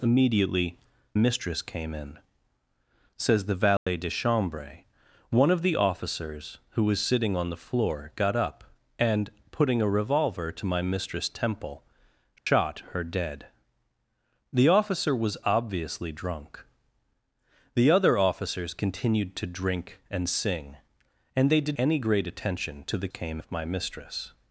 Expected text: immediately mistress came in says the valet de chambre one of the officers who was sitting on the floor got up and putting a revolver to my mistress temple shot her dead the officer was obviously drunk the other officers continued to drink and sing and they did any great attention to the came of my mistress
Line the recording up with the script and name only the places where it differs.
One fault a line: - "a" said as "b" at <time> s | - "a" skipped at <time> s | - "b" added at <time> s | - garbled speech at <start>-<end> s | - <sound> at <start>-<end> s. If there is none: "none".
- dropout at 3.8-3.9 s
- dropout at 12.4-12.5 s